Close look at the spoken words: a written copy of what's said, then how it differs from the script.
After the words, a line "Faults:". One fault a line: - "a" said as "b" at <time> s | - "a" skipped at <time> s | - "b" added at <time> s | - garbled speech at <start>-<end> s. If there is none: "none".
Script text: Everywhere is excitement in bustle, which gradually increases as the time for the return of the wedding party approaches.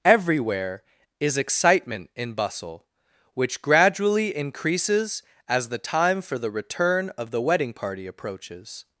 Everywhere is excitement in bustle, which gradually increases as the time for the return of the wedding party approaches.
Faults:
none